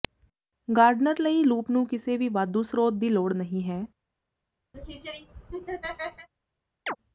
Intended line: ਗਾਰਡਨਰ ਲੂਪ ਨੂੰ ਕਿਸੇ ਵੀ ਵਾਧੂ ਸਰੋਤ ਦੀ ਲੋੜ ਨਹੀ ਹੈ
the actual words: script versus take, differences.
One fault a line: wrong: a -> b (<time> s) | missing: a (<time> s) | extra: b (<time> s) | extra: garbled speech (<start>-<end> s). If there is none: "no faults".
extra: ਲਈ (1.2 s)